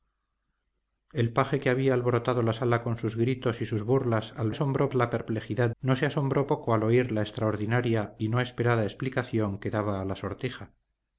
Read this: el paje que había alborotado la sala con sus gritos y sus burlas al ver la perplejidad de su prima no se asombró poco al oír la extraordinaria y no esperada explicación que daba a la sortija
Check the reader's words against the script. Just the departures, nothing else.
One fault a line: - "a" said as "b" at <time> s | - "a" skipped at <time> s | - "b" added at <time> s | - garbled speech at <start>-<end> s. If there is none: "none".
- "ver" said as "asombró" at 4.5 s
- "de su prima" skipped at 5.7 s